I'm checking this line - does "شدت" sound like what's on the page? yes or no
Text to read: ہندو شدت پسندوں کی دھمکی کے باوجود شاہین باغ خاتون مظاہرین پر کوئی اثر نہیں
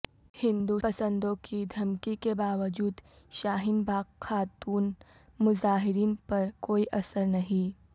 no